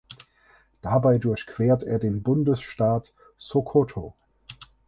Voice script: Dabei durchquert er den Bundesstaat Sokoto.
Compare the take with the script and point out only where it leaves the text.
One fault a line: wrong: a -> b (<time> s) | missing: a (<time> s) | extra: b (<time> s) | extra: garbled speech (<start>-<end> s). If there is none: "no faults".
no faults